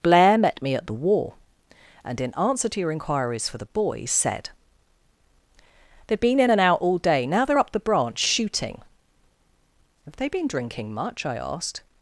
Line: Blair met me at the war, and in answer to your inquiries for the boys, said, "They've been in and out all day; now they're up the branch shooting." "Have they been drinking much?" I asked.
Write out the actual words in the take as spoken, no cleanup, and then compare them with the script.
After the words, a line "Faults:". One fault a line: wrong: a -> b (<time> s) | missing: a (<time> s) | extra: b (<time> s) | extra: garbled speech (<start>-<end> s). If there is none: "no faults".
Blair met me at the war, and in answer to your inquiries for the boys, said, "They've been in and out all day; now they're up the branch shooting." "Have they been drinking much?" I asked.
Faults:
no faults